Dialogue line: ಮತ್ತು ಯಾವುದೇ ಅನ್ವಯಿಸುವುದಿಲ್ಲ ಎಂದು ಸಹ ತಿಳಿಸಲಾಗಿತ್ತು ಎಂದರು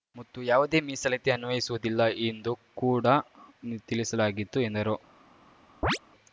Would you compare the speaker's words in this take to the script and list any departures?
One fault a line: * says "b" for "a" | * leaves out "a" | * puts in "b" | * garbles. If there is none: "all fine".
* puts in "ಮೀಸಲಾತಿ"
* says "ಕೂಡ" for "ಸಹ"